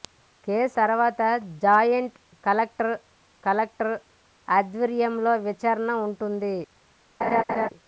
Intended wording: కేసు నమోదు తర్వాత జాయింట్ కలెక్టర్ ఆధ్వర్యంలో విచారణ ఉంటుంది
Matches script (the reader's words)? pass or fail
fail